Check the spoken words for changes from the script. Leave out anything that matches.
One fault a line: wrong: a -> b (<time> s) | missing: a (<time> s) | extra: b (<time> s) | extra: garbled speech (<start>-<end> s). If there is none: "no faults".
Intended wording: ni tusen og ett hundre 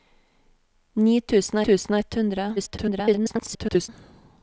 extra: tusen (1.7 s)
extra: garbled speech (2.6-3.9 s)